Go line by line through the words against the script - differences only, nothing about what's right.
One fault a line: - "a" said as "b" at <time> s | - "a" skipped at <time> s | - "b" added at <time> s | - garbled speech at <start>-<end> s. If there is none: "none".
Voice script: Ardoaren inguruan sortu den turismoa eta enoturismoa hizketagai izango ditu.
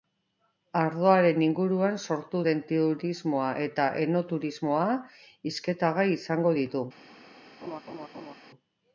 none